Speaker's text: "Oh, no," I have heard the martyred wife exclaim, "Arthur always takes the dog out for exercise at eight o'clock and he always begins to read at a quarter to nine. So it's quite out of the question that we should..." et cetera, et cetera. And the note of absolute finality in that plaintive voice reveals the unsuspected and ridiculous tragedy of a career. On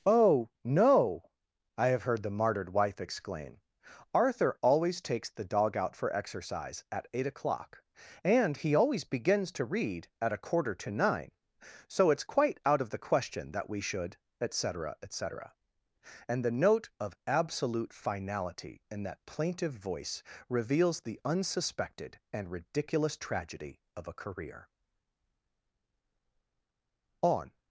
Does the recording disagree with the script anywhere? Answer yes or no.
no